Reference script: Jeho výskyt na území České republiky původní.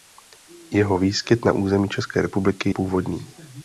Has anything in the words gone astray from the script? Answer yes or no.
no